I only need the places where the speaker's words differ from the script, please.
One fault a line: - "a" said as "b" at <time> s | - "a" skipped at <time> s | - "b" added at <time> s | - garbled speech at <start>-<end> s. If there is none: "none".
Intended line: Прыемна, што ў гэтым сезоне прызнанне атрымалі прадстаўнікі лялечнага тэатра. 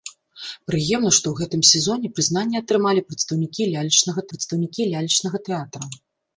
- "прадстаўнікі лялечнага" added at 4.3 s